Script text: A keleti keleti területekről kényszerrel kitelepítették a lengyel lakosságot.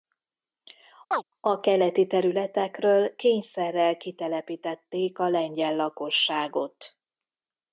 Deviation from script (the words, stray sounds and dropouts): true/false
true